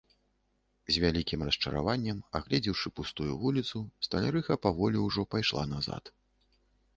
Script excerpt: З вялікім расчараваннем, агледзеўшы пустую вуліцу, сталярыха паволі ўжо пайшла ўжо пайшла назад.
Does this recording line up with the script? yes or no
no